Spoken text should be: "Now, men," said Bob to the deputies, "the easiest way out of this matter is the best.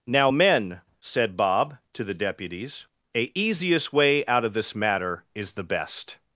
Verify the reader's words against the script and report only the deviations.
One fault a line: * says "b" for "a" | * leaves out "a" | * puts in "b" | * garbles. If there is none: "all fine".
* says "a" for "the"